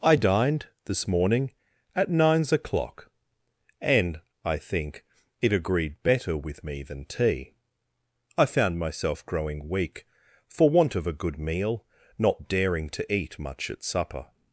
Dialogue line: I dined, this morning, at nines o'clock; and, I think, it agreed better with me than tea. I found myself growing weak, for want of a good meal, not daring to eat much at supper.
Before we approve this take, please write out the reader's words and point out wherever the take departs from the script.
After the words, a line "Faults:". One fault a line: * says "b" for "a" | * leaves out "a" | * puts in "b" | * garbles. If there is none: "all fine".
I dined, this morning, at nines o'clock; and, I think, it agreed better with me than tea. I found myself growing weak, for want of a good meal, not daring to eat much at supper.
Faults:
all fine